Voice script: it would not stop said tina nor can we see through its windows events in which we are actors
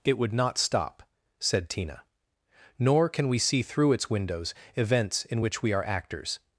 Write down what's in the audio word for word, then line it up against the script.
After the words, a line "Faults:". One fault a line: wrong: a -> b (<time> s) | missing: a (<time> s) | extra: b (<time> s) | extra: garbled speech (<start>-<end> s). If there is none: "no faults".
it would not stop said tina nor can we see through its windows events in which we are actors
Faults:
no faults